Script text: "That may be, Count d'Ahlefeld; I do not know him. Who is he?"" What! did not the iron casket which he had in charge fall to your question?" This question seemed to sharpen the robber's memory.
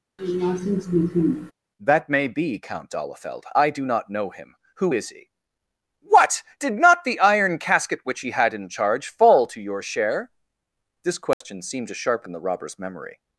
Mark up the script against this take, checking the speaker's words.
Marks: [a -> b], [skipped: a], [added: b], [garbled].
"That may be, Count d'Ahlefeld; I do not know him. Who is he?"" What! did not the iron casket which he had in charge fall to your [question?" -> share] This question seemed to sharpen the robber's memory.